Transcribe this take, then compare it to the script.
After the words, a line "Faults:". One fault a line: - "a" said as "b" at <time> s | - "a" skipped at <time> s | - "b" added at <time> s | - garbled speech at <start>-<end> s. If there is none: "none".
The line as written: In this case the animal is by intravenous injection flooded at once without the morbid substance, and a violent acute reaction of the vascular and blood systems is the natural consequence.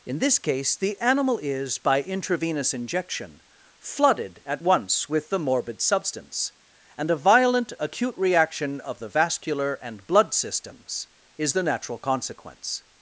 In this case the animal is by intravenous injection flooded at once with the morbid substance, and a violent acute reaction of the vascular and blood systems is the natural consequence.
Faults:
- "without" said as "with" at 5.1 s